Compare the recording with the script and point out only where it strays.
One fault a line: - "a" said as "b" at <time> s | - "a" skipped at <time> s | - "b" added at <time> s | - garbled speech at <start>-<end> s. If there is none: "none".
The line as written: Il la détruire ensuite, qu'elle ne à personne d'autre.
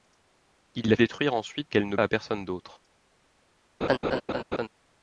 none